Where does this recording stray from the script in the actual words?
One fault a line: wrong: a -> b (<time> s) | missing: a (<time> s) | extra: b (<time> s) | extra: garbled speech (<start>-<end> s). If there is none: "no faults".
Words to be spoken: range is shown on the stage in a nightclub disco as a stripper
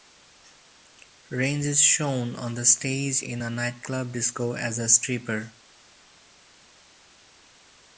no faults